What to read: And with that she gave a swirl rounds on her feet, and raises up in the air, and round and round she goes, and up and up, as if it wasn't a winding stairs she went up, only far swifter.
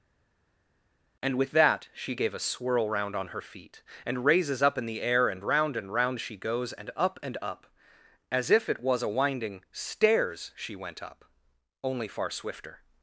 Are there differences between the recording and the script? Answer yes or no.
yes